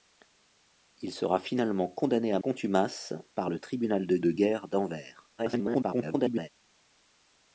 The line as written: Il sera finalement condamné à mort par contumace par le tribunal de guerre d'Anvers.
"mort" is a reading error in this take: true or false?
true